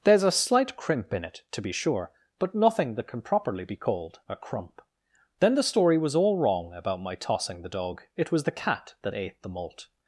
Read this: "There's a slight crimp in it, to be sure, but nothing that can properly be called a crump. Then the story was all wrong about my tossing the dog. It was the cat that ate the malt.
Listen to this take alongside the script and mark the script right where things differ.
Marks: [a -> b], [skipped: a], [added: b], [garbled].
"There's a slight crimp in it, to be sure, but nothing that can properly be called a crump. Then the story was all wrong about my tossing the dog. It was the cat that ate the malt.